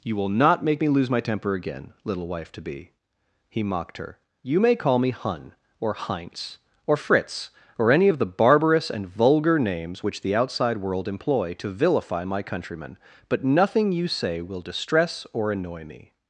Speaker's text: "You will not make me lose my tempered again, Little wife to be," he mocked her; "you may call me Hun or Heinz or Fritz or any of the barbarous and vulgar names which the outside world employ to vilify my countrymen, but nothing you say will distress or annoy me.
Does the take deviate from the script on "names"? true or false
false